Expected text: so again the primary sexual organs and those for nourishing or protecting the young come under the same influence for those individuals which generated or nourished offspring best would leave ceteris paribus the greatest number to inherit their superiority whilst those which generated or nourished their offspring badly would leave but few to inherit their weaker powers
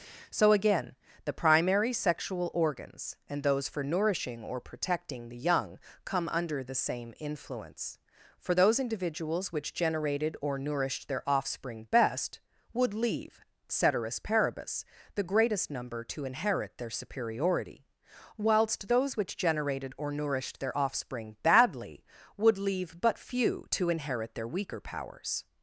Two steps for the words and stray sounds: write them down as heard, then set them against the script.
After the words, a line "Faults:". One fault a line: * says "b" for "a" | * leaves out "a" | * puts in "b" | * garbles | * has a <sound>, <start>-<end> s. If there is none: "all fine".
so again the primary sexual organs and those for nourishing or protecting the young come under the same influence for those individuals which generated or nourished their offspring best would leave ceteris paribus the greatest number to inherit their superiority whilst those which generated or nourished their offspring badly would leave but few to inherit their weaker powers
Faults:
* puts in "their"